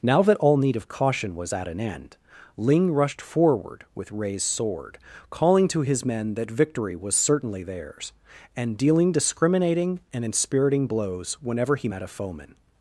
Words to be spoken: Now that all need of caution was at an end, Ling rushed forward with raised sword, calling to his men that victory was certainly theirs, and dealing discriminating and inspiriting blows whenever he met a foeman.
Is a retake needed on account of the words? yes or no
no